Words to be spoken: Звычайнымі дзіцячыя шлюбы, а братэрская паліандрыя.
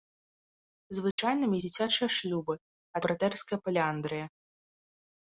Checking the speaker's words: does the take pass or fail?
pass